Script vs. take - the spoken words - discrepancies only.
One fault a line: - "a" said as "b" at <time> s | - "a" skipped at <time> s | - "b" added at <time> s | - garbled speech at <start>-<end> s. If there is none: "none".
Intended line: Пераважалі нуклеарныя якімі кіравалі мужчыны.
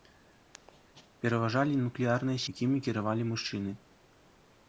none